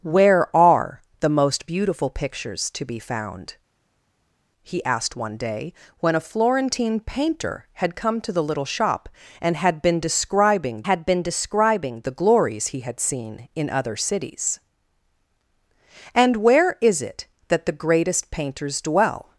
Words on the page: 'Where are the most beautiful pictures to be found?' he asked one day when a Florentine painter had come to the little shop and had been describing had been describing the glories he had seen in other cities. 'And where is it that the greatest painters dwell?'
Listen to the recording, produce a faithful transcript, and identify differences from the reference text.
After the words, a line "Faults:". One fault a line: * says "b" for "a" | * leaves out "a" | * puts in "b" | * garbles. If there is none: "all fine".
'Where are the most beautiful pictures to be found?' he asked one day when a Florentine painter had come to the little shop and had been describing had been describing the glories he had seen in other cities. 'And where is it that the greatest painters dwell?'
Faults:
all fine